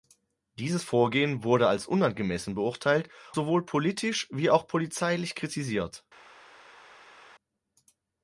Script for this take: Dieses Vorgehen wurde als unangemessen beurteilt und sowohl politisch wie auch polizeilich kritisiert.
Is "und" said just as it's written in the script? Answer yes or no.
no